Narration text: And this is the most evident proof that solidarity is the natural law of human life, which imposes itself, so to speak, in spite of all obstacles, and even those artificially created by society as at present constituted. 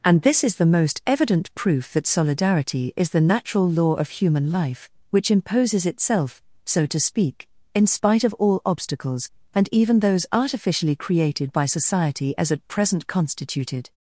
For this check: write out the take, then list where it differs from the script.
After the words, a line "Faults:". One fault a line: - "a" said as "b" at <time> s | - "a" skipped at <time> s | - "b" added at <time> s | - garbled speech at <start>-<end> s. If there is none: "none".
And this is the most evident proof that solidarity is the natural law of human life, which imposes itself, so to speak, in spite of all obstacles, and even those artificially created by society as at present constituted.
Faults:
none